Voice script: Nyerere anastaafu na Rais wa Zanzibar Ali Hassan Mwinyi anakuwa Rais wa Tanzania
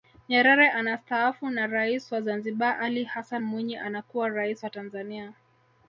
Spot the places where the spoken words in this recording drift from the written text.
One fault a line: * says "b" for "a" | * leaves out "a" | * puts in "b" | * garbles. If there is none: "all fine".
all fine